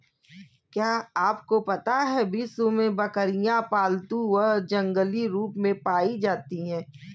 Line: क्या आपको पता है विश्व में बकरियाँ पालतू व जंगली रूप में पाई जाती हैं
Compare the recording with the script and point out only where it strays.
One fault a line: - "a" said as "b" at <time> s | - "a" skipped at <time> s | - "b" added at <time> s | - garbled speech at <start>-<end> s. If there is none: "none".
none